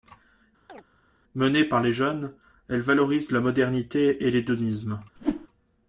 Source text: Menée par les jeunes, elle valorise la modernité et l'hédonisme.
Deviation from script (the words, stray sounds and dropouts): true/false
true